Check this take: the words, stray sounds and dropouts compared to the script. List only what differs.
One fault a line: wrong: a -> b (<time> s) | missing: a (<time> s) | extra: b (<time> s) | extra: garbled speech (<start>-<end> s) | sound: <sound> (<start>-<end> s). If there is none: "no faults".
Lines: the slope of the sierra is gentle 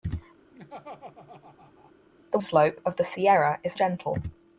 sound: laugh (0.5-1.9 s)